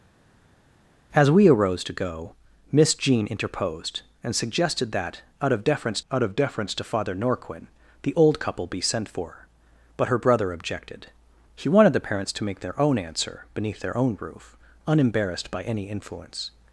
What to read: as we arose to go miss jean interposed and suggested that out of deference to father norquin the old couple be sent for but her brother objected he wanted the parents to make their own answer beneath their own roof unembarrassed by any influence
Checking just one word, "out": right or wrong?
right